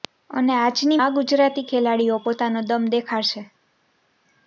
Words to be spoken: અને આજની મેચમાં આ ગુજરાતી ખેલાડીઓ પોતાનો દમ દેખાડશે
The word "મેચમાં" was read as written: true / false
false